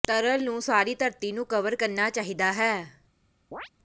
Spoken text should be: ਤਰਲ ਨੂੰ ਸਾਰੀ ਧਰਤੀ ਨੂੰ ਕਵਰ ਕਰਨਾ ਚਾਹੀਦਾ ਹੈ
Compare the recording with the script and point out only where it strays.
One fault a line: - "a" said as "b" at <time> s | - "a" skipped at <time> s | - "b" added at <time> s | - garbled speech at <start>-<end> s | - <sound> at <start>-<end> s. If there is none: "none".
- chirp at 3.5-3.7 s